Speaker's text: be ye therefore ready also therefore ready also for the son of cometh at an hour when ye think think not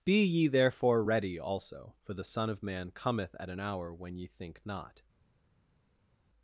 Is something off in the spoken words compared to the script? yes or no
yes